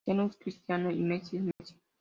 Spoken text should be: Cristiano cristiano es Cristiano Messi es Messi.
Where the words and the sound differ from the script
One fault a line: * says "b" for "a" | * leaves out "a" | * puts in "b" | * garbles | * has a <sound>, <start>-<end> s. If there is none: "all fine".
* leaves out "cristiano"
* puts in "y"
* has a dropout, 1.5-1.6 s